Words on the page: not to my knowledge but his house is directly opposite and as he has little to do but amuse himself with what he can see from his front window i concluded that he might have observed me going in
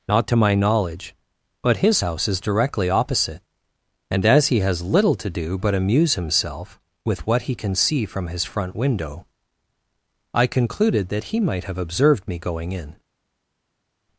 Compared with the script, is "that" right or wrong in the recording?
right